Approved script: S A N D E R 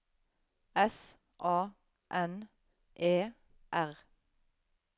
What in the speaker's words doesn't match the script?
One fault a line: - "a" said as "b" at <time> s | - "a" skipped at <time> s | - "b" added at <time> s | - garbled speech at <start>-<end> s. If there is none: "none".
- "D" skipped at 2.5 s